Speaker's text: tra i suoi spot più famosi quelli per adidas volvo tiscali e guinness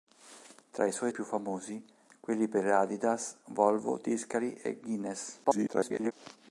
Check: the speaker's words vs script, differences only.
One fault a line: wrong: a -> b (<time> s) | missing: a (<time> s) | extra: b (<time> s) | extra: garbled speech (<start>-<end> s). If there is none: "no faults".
missing: spot (1.1 s)
extra: garbled speech (5.4-6.1 s)